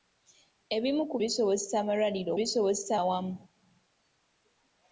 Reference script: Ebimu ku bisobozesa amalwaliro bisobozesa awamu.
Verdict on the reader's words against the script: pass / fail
pass